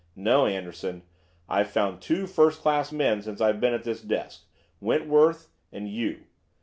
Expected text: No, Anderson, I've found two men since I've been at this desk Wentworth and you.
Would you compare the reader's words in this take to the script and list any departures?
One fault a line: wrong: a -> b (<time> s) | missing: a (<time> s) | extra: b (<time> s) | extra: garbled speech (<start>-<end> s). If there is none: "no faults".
extra: first class (2.2 s)